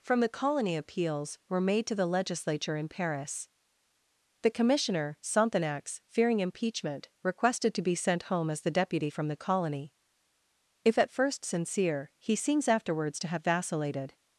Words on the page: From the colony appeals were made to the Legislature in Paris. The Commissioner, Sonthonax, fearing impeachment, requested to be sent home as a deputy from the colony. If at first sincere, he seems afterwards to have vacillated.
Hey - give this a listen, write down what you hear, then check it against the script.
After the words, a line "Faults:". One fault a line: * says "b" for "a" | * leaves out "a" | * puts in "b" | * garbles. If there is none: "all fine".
From the colony appeals were made to the Legislature in Paris. The Commissioner, Sonthonax, fearing impeachment, requested to be sent home as the deputy from the colony. If at first sincere, he seems afterwards to have vacillated.
Faults:
* says "the" for "a"